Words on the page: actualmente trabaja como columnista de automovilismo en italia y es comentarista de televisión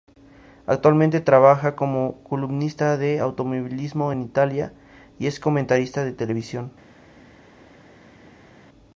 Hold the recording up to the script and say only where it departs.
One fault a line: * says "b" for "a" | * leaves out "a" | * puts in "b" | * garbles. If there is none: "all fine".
all fine